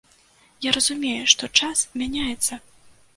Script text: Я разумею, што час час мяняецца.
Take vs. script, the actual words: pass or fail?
fail